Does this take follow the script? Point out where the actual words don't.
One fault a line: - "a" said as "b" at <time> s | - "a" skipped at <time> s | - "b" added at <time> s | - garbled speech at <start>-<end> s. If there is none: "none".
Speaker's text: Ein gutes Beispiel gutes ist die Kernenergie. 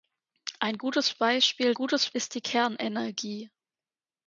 none